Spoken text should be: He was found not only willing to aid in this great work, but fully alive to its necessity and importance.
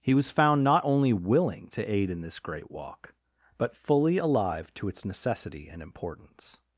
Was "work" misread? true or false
true